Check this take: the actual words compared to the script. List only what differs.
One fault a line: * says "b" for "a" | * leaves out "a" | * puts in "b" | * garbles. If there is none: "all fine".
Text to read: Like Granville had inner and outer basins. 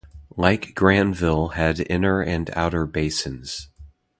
all fine